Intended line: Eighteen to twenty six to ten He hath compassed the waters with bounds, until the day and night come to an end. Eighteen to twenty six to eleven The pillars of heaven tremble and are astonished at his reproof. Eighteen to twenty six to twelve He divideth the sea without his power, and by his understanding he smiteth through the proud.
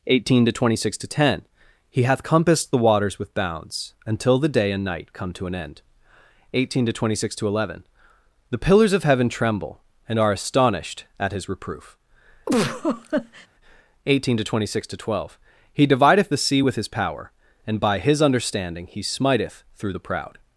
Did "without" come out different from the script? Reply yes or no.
yes